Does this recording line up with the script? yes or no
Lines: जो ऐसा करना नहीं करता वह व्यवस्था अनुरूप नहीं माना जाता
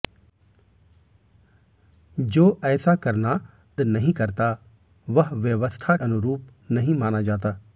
yes